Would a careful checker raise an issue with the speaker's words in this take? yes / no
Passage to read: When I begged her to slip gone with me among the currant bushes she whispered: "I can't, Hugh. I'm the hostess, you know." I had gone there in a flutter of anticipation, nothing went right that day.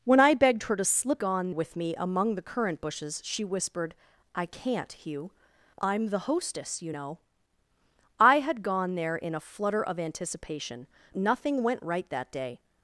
no